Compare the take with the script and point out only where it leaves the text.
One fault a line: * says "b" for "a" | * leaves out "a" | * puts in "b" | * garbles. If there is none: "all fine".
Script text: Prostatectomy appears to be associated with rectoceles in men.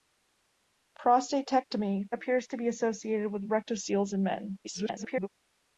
* garbles